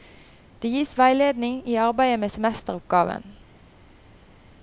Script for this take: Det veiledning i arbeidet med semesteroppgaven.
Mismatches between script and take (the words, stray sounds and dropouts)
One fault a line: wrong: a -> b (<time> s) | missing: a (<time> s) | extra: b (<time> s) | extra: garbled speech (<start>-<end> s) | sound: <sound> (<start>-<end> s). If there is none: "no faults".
extra: gis (0.7 s)